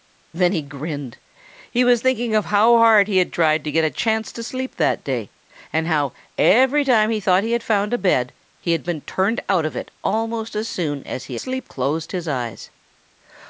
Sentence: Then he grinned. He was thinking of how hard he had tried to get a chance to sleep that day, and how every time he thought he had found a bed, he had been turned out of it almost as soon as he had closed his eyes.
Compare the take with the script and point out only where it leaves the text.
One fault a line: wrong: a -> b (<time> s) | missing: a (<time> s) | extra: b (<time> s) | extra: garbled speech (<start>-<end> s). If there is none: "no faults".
wrong: had -> sleep (11.3 s)